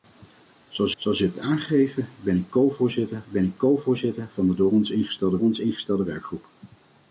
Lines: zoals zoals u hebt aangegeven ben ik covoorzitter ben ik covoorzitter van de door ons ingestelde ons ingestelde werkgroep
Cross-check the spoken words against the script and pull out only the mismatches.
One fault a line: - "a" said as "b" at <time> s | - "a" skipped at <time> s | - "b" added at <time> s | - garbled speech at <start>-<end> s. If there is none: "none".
none